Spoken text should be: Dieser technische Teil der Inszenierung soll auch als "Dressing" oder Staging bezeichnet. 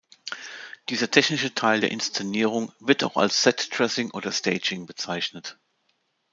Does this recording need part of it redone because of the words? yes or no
yes